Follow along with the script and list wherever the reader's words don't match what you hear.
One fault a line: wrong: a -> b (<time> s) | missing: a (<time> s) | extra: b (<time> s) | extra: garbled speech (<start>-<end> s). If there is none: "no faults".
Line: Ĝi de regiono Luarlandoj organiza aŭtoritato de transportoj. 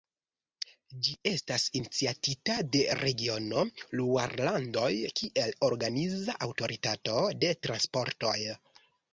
extra: estas iniciatita (1.3 s)
extra: kiel (5.2 s)